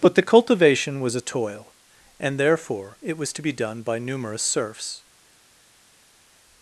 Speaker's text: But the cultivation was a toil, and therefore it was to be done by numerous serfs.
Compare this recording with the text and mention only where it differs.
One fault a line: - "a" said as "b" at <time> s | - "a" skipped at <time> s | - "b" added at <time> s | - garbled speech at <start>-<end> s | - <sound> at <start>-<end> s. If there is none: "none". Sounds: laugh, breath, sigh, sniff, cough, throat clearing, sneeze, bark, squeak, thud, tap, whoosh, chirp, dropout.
none